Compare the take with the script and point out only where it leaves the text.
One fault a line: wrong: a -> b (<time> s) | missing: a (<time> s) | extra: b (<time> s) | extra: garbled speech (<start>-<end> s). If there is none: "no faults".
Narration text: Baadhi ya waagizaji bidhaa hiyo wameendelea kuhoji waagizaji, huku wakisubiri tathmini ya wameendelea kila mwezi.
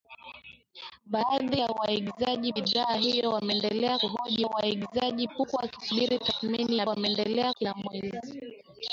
no faults